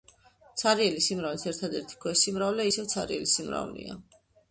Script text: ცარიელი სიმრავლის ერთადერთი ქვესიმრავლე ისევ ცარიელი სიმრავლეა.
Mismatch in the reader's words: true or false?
false